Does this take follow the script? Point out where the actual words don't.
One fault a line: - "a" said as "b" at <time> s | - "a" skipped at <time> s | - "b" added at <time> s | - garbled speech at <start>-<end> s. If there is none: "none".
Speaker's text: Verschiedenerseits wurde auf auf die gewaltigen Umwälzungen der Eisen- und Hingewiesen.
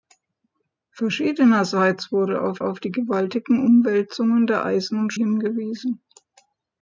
none